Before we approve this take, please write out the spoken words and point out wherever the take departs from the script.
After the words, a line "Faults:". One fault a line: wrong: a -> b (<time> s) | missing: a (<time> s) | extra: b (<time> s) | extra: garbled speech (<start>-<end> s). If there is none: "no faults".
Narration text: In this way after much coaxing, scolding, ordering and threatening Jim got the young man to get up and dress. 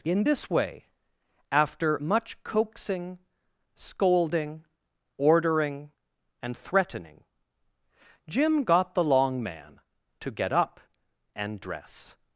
In this way after much coaxing, scolding, ordering and threatening Jim got the long man to get up and dress.
Faults:
wrong: young -> long (9.0 s)